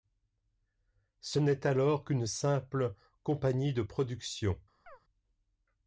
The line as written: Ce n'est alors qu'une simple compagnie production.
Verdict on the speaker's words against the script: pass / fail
fail